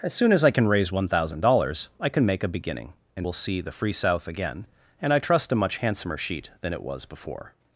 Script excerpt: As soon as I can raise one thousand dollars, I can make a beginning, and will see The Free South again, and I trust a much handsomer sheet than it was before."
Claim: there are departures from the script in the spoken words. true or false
false